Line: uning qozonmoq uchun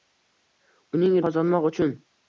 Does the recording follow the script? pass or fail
pass